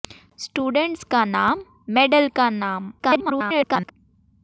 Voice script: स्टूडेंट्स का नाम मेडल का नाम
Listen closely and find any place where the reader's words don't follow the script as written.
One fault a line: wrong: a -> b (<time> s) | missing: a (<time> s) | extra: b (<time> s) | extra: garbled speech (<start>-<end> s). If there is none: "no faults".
extra: garbled speech (3.0-3.9 s)